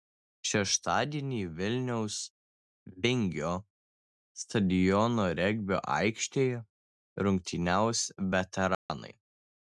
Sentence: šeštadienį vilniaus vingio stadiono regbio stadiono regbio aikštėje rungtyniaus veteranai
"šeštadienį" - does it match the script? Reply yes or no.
yes